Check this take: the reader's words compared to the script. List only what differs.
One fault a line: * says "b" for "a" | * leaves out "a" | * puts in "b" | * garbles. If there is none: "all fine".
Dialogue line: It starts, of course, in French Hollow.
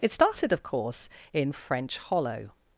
* says "started" for "starts"